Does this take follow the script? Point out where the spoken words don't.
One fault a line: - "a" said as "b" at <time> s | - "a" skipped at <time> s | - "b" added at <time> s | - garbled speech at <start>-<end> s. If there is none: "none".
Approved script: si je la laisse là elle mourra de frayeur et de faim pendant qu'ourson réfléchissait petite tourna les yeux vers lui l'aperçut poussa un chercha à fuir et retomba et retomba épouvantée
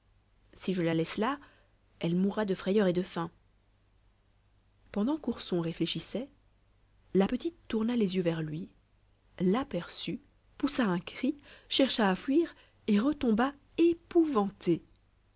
- "la" added at 7.1 s
- "cri" added at 11.0 s
- "et retomba" skipped at 13.5 s